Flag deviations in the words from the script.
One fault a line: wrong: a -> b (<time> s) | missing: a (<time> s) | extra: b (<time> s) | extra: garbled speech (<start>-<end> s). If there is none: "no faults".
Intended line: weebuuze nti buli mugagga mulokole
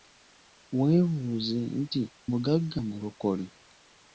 missing: buli (2.0 s)